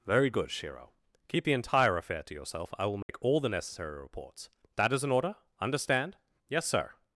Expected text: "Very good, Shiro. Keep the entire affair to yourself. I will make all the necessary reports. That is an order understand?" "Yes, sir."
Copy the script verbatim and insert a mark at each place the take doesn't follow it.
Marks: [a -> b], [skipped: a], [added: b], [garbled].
"Very good, Shiro. Keep the entire affair to yourself. I will make all the necessary reports. That is an order understand?" "Yes, sir."